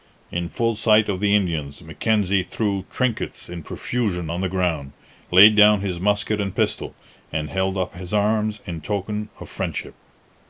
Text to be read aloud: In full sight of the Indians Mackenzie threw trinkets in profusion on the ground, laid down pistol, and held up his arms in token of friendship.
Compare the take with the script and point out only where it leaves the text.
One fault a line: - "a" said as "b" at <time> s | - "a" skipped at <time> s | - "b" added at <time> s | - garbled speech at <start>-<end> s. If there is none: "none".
- "his musket and" added at 5.8 s